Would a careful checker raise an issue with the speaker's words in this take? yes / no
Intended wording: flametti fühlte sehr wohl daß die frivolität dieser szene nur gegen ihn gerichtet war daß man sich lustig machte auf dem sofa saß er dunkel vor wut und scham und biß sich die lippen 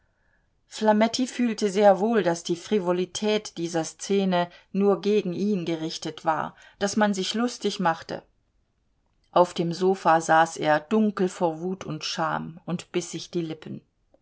no